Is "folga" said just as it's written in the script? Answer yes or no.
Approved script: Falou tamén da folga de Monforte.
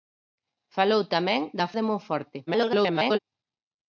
no